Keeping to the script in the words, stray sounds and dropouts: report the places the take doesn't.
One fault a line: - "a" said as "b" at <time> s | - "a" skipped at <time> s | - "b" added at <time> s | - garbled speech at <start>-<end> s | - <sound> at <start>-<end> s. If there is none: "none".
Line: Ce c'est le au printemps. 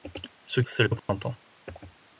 - dropout at 1.0-1.1 s